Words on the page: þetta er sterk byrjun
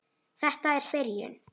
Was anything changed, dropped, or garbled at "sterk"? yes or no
yes